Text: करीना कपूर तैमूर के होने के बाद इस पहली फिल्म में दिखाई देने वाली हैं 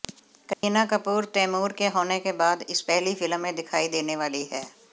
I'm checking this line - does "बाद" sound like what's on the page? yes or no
yes